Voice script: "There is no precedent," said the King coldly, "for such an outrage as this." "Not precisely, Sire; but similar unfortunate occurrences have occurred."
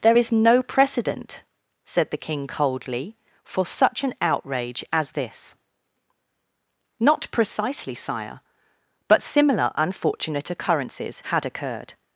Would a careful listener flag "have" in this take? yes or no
yes